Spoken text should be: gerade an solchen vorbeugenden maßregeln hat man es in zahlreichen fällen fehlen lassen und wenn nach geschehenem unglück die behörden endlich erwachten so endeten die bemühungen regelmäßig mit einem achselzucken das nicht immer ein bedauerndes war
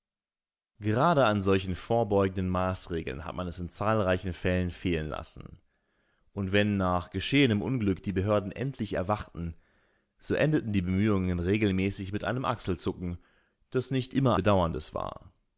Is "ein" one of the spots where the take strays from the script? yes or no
yes